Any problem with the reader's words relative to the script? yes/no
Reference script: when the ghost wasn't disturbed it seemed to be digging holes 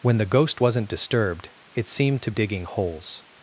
yes